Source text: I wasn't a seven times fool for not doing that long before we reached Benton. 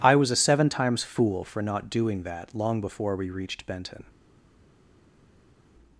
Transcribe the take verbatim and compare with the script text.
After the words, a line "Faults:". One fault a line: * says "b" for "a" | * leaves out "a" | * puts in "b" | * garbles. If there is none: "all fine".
I was a seven times fool for not doing that long before we reached Benton.
Faults:
* says "was" for "wasn't"